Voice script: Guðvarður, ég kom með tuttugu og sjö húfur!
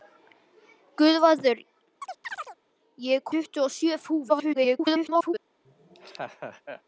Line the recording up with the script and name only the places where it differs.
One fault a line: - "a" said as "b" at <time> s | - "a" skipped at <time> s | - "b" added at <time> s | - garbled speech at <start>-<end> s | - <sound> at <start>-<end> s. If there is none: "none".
- chirp at 2.0-2.6 s
- "kom með" skipped at 3.2 s
- garbled speech at 4.3-5.3 s
- laugh at 5.6-6.8 s